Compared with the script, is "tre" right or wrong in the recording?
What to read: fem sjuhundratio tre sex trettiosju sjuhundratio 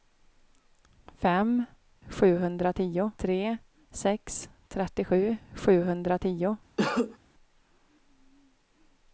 right